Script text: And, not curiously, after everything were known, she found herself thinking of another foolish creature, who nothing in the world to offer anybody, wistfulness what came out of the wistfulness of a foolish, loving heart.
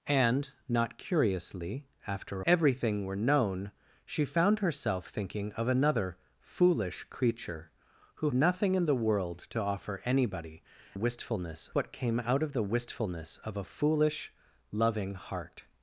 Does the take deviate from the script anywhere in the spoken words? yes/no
no